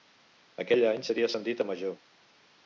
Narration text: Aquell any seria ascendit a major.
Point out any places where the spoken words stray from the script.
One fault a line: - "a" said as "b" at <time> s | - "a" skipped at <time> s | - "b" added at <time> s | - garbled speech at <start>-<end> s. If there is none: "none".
none